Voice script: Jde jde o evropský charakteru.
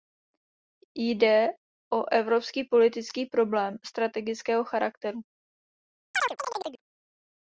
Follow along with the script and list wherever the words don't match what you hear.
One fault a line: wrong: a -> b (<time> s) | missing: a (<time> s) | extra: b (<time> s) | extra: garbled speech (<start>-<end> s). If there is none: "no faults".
missing: jde (1.5 s)
extra: politický problém strategického (2.6 s)